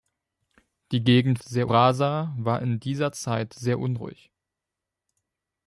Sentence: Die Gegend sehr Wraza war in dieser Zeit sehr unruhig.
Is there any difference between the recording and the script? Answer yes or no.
no